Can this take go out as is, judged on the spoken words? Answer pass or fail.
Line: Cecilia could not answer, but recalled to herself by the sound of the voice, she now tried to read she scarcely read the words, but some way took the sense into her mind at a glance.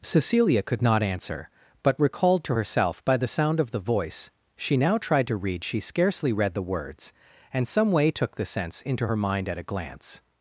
fail